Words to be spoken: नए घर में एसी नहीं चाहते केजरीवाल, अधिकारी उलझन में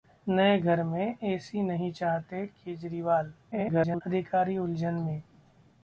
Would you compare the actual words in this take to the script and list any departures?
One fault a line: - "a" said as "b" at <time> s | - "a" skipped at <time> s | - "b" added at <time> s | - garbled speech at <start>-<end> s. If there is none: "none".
- garbled speech at 3.5-4.0 s